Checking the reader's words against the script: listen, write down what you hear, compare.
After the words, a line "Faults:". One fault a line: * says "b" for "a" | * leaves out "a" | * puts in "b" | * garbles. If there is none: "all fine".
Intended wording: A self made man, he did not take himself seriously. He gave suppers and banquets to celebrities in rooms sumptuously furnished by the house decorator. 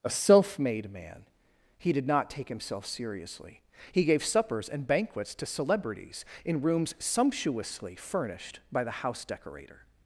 A self made man, he did not take himself seriously. He gave suppers and banquets to celebrities in rooms sumptuously furnished by the house decorator.
Faults:
all fine